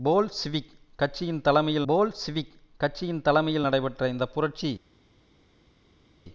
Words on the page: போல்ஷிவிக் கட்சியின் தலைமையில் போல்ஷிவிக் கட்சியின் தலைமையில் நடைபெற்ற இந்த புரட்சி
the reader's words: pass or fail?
pass